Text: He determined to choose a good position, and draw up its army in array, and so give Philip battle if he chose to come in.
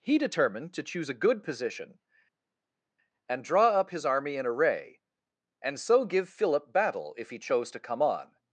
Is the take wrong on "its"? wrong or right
wrong